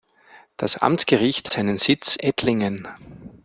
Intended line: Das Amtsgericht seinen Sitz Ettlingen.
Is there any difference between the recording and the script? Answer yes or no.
no